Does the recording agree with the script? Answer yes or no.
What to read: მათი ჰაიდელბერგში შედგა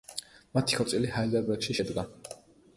no